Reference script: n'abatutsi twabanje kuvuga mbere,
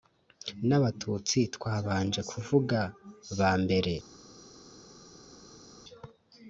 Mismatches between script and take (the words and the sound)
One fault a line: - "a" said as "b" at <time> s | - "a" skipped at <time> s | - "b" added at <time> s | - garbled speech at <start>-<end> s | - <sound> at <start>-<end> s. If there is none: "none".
- "ba" added at 3.4 s